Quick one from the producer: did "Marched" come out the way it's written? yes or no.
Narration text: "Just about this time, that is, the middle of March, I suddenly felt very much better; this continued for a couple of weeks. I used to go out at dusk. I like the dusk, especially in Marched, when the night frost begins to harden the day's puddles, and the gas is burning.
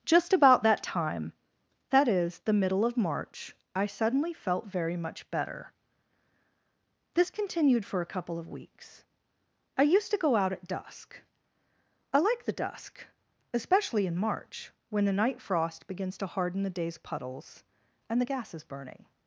no